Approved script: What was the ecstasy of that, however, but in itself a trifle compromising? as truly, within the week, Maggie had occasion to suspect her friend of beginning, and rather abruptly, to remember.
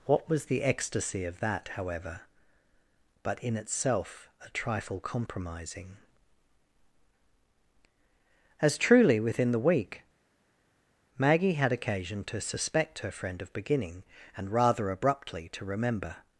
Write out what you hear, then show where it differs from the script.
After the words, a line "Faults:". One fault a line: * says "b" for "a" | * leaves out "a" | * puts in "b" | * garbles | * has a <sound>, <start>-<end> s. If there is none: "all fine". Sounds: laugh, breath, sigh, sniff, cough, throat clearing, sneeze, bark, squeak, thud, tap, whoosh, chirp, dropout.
What was the ecstasy of that, however, but in itself a trifle compromising? as truly, within the week, Maggie had occasion to suspect her friend of beginning, and rather abruptly, to remember.
Faults:
all fine